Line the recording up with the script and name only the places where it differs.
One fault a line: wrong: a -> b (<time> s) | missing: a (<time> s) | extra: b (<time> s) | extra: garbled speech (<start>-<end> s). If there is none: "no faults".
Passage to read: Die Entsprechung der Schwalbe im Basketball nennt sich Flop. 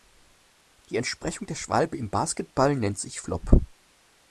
no faults